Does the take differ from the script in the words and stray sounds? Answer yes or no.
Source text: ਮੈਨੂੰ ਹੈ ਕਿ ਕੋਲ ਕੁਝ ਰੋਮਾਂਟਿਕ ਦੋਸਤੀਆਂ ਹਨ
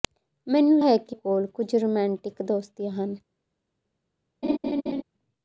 yes